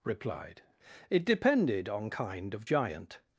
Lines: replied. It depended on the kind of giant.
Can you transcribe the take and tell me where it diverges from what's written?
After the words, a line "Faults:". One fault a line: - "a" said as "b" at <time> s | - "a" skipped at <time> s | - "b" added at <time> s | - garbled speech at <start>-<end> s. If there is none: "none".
replied. It depended on kind of giant.
Faults:
- "the" skipped at 2.1 s